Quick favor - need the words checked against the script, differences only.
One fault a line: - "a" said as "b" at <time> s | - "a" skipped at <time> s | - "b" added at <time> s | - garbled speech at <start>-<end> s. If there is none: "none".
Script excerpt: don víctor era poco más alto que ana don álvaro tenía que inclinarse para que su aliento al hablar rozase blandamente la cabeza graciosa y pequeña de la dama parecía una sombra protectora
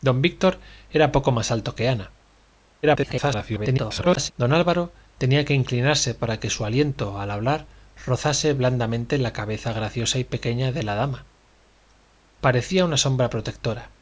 - garbled speech at 2.8-4.3 s